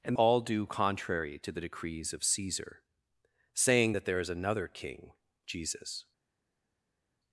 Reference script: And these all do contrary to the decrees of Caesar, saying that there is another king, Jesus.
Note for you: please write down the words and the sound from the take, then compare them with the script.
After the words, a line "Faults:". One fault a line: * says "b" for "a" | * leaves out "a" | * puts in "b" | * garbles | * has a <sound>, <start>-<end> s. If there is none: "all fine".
And all do contrary to the decrees of Caesar, saying that there is another king, Jesus.
Faults:
* leaves out "these"